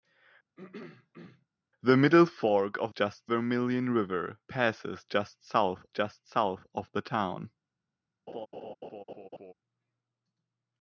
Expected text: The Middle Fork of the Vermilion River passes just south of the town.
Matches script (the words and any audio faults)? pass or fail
fail